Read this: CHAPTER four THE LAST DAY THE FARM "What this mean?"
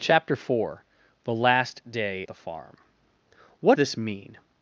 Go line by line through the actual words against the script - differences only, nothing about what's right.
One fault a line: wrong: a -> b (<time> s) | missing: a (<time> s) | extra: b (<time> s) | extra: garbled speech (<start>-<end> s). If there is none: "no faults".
no faults